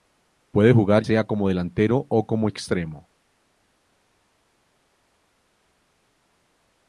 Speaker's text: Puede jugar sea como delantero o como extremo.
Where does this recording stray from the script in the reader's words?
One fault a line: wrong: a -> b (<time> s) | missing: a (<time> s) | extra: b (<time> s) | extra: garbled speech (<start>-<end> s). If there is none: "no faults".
no faults